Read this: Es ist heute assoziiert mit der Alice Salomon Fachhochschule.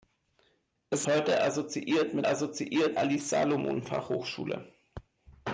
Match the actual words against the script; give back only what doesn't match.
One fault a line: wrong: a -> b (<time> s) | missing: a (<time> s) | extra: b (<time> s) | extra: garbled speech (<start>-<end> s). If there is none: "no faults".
missing: ist (1.1 s)
wrong: der -> assoziiert (2.2 s)